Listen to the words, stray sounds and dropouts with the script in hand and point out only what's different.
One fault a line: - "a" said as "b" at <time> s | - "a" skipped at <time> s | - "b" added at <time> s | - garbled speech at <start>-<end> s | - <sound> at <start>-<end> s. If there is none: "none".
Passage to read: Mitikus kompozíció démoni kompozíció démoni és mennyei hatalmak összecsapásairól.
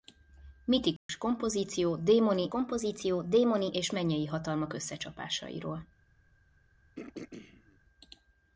- dropout at 1.0-1.1 s
- throat clearing at 7.0-7.8 s